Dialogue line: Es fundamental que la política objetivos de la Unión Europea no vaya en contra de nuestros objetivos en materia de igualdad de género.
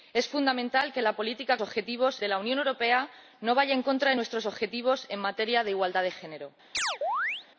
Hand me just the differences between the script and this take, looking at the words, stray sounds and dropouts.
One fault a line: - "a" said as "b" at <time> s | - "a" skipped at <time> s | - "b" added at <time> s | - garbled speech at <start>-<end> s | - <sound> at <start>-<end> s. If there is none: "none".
- chirp at 6.7-7.5 s